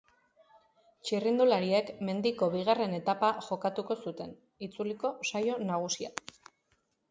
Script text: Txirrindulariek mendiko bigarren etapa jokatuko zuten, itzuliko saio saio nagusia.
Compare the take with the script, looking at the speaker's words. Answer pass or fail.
fail